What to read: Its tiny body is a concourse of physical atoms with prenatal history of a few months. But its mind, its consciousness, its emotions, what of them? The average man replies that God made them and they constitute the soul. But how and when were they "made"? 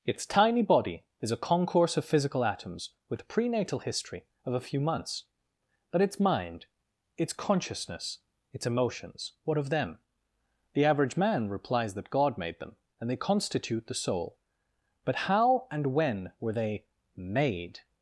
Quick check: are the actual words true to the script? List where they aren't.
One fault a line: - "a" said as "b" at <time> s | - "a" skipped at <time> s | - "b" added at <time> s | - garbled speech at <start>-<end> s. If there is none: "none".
none